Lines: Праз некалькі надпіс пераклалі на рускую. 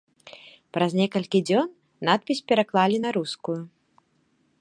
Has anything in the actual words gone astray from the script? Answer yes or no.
yes